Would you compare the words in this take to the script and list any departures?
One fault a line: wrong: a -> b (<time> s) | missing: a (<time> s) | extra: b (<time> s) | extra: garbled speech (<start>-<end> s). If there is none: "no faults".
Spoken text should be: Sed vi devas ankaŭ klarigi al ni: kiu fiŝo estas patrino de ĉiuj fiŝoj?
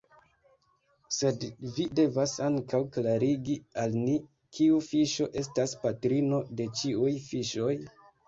no faults